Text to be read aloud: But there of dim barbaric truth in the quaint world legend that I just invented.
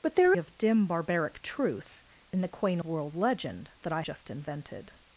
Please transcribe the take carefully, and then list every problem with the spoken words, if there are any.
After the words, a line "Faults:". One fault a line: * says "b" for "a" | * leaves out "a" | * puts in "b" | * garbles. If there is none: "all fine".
But there of dim barbaric truth in the quaint world legend that I just invented.
Faults:
all fine